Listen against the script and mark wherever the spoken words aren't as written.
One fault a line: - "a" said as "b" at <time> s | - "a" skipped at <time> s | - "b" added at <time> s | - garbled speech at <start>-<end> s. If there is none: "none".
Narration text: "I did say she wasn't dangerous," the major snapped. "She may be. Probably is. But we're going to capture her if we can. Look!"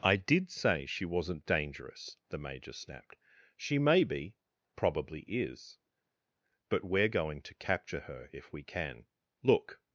none